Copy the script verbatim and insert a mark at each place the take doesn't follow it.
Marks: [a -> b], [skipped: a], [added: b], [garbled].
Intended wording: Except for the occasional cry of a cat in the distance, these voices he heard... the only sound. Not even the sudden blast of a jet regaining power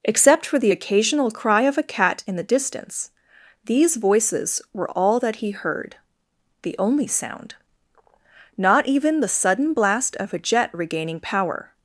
Except for the occasional cry of a cat in the distance, these voices [added: were all that] he heard... the only sound. Not even the sudden blast of a jet regaining power